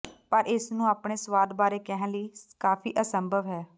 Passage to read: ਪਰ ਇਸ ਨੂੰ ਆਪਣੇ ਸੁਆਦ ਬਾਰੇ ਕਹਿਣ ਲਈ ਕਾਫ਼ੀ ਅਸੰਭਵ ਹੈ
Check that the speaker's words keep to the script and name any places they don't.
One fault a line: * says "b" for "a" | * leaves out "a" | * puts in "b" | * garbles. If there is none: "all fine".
all fine